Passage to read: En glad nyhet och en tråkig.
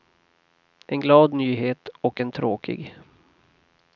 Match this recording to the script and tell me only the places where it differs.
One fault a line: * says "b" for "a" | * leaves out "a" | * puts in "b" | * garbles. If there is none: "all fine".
all fine